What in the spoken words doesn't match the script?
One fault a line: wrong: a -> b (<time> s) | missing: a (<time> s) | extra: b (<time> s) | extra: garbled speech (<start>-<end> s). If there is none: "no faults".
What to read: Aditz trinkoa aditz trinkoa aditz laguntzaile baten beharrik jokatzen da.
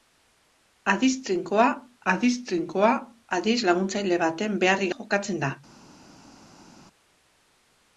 no faults